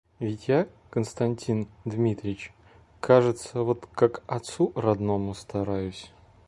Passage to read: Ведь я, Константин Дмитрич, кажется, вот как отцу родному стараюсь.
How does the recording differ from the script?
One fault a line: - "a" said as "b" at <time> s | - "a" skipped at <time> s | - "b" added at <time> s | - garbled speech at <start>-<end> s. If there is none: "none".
none